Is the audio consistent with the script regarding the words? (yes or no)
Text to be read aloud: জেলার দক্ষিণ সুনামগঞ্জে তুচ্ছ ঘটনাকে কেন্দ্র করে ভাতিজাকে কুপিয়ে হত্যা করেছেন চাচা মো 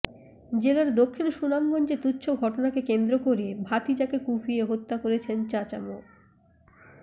yes